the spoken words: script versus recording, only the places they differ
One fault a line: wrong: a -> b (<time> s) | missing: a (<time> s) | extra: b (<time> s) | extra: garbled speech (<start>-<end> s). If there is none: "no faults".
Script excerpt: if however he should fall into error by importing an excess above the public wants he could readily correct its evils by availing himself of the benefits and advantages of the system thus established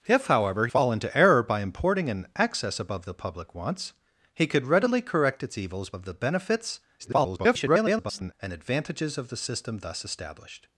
missing: he should (0.7 s)
missing: by availing himself (5.9 s)
extra: garbled speech (7.0-8.3 s)